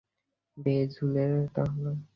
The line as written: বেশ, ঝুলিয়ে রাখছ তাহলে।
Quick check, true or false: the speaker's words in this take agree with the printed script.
false